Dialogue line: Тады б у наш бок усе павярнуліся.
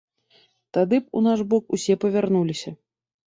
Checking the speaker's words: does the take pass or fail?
pass